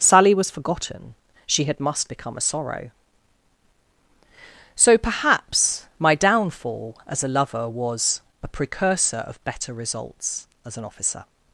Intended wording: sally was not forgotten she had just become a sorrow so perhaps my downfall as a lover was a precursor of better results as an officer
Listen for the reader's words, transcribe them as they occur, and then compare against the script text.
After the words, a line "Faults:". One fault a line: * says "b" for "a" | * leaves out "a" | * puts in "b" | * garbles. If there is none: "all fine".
sally was forgotten she had must become a sorrow so perhaps my downfall as a lover was a precursor of better results as an officer
Faults:
* leaves out "not"
* says "must" for "just"